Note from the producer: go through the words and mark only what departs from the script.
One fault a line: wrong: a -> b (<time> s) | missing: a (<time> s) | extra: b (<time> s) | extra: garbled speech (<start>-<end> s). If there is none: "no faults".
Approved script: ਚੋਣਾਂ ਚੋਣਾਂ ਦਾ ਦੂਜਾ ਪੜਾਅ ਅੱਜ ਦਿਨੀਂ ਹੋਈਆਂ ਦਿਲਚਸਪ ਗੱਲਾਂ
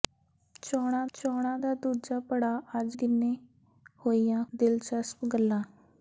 no faults